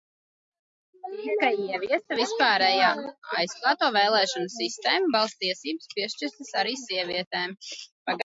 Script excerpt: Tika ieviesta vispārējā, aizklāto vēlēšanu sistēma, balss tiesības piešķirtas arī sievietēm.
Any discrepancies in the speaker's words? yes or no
no